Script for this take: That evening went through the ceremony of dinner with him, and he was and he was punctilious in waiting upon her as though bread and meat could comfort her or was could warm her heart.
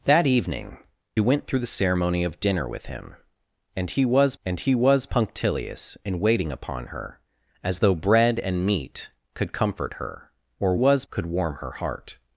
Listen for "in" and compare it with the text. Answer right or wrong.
right